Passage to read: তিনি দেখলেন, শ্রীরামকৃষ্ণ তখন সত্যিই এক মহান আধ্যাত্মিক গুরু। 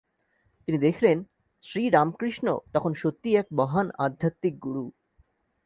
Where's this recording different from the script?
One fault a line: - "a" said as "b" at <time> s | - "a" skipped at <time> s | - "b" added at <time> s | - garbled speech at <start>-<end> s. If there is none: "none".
none